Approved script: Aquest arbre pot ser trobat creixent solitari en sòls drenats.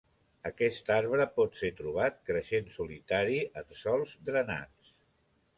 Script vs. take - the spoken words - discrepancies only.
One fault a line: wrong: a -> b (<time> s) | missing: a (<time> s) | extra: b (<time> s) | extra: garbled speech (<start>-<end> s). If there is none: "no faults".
no faults